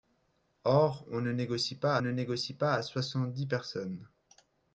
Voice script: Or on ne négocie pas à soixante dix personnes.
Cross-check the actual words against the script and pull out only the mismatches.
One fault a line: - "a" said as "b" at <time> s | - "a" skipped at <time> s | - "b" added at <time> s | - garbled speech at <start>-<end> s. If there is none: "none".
- "ne négocie pas" added at 2.0 s